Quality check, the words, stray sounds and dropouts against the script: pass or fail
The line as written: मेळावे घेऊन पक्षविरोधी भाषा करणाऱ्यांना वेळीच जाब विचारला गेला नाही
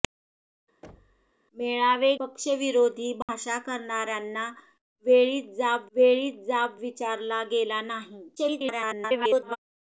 fail